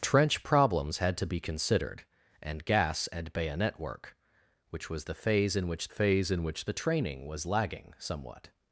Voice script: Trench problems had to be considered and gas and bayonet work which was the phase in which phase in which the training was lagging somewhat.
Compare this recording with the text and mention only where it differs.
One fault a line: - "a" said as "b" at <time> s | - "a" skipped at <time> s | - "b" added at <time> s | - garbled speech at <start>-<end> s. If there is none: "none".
none